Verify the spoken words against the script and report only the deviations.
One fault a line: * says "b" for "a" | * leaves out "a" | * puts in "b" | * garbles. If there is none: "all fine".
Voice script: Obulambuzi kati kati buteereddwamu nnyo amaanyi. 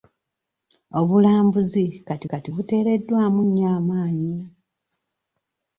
all fine